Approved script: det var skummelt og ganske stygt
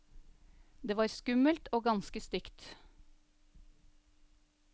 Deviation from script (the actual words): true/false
false